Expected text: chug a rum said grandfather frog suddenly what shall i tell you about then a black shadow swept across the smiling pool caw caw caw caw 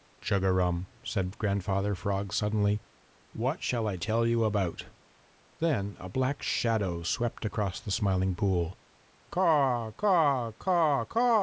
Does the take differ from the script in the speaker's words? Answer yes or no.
no